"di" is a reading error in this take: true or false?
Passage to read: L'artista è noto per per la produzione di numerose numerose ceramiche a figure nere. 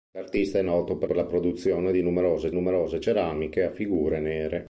false